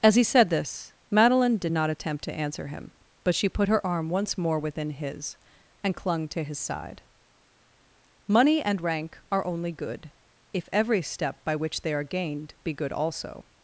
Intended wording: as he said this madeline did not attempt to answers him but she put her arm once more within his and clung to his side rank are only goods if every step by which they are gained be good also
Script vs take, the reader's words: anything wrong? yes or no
yes